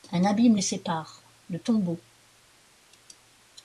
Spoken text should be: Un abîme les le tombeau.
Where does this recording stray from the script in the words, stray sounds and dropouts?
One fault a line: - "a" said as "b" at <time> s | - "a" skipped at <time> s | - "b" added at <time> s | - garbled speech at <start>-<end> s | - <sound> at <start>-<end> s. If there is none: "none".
- "sépare" added at 0.6 s